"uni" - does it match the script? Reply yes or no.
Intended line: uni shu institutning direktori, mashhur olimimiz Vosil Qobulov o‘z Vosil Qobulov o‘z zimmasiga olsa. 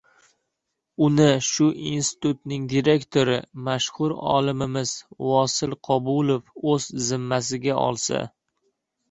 yes